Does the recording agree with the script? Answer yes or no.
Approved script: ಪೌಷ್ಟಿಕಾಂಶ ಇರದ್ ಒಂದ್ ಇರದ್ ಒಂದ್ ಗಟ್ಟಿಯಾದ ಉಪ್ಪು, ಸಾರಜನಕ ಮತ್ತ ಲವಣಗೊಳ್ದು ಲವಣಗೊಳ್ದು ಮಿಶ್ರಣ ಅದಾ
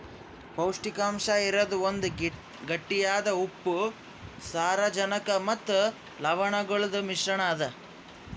no